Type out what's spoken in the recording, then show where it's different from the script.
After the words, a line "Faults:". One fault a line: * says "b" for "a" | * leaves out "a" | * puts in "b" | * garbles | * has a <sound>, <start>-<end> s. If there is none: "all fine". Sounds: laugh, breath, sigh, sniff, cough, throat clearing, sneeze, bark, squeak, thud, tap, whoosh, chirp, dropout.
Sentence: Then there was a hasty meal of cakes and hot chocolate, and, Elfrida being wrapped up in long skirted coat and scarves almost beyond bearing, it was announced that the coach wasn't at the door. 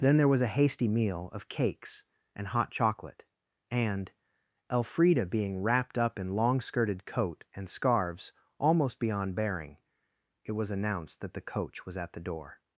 Then there was a hasty meal of cakes and hot chocolate, and, Elfrida being wrapped up in long skirted coat and scarves almost beyond bearing, it was announced that the coach was at the door.
Faults:
* says "was" for "wasn't"